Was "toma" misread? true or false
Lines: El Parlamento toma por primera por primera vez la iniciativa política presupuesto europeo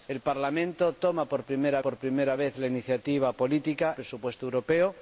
false